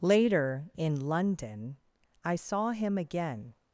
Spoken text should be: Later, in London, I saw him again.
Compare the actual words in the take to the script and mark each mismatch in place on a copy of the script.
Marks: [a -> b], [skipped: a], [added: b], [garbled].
Later, in London, I saw him again.